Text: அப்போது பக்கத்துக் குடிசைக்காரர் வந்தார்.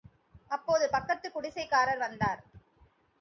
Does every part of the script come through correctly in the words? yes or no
yes